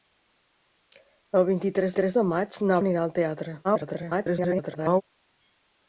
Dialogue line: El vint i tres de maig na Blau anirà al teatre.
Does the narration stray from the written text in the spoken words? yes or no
yes